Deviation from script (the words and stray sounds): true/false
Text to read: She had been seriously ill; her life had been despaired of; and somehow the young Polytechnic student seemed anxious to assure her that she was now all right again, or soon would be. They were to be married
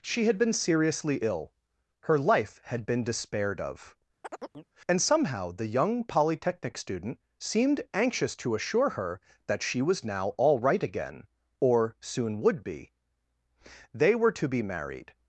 true